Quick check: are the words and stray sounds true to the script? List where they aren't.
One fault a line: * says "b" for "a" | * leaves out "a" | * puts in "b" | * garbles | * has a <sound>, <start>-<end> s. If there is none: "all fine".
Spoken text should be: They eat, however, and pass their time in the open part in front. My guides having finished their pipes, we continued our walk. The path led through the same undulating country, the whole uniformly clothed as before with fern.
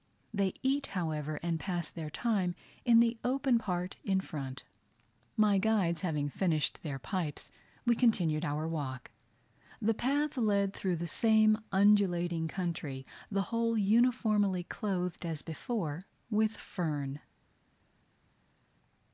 all fine